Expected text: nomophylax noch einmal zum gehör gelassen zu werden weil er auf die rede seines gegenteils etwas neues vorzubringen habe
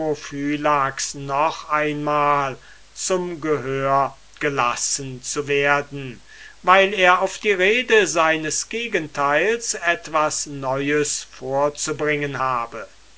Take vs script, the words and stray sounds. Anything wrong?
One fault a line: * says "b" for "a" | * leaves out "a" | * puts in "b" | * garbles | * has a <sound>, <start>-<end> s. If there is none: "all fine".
all fine